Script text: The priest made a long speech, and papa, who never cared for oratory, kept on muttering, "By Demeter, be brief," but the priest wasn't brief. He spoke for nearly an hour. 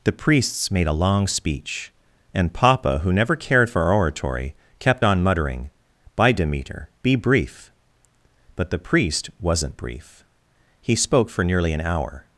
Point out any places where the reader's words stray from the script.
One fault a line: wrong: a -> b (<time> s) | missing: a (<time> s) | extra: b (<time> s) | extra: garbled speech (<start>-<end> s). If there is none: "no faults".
wrong: priest -> priests (0.1 s)